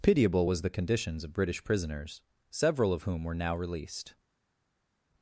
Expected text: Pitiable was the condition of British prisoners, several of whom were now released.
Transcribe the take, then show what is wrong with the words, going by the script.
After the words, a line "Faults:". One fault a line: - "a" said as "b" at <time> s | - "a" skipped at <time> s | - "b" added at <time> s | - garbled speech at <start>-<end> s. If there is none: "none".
Pitiable was the conditions of British prisoners, several of whom were now released.
Faults:
- "condition" said as "conditions" at 0.7 s